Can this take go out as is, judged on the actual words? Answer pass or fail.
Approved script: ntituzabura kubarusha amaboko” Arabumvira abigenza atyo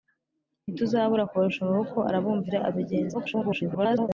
fail